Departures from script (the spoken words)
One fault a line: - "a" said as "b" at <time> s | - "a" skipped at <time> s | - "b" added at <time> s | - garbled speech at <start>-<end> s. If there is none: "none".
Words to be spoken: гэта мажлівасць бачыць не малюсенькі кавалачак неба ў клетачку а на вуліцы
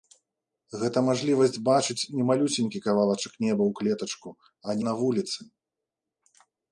none